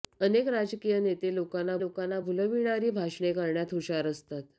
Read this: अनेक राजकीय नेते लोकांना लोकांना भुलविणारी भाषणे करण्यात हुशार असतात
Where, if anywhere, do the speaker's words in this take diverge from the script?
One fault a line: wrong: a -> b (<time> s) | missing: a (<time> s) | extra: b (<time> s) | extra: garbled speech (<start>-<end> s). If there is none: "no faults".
no faults